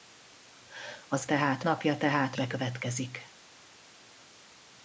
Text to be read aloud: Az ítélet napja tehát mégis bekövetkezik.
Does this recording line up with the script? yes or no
no